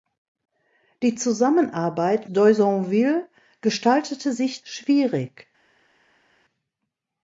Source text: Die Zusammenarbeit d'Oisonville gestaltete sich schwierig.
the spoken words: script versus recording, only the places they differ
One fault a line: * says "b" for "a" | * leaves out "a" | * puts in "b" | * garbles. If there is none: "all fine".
all fine